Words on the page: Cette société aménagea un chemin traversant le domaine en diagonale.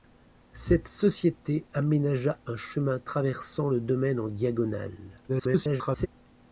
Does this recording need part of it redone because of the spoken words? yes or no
yes